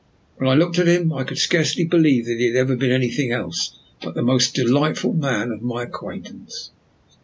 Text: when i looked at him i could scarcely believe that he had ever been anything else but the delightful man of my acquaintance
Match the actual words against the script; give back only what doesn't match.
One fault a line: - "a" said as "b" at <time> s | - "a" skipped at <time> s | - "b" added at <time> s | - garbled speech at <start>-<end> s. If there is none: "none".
- "most" added at 4.2 s